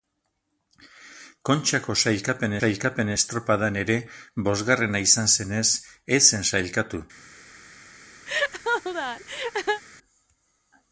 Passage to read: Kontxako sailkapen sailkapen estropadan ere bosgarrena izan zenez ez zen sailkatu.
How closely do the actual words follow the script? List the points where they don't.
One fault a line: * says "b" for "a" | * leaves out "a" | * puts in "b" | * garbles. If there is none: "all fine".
all fine